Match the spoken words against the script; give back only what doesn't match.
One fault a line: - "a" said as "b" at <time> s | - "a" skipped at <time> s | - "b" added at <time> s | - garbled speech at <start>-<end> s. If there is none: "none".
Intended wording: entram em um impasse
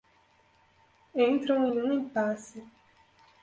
none